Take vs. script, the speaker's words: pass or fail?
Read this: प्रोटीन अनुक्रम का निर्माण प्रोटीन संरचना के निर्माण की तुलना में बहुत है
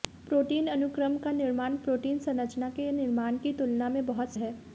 pass